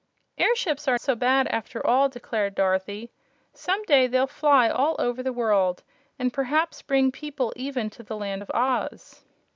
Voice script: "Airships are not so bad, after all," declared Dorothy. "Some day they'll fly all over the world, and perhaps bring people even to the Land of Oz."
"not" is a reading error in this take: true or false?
true